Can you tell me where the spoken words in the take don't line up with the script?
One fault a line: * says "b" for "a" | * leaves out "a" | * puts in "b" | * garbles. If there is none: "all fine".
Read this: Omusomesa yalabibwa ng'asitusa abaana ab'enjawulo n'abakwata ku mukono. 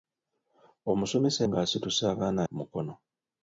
* leaves out "yalabibwa"
* leaves out "ab'enjawulo n'abakwata"